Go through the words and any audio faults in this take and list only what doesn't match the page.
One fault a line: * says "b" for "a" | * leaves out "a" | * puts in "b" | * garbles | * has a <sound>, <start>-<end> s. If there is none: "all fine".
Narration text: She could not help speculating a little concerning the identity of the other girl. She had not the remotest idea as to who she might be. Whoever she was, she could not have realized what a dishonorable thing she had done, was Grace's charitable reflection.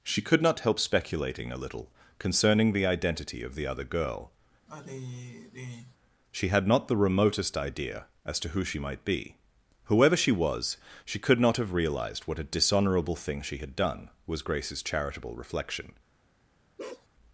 * has a sigh, 4.7-6.0 s
* has a bark, 16.8-17.1 s